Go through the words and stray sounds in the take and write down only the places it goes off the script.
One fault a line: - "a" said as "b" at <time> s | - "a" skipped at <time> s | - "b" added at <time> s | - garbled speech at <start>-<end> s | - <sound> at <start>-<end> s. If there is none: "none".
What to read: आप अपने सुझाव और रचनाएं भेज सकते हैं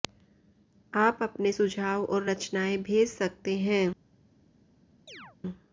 - chirp at 5.1-5.4 s